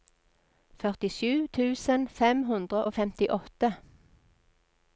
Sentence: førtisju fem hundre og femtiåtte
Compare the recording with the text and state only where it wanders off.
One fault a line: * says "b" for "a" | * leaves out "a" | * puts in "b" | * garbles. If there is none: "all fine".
* puts in "tusen"